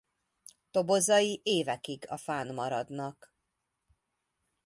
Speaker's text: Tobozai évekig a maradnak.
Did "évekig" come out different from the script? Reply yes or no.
no